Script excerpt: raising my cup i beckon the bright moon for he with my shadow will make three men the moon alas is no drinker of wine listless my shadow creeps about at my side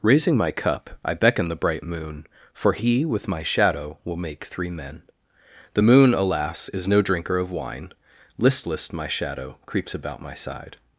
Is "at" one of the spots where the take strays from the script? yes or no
yes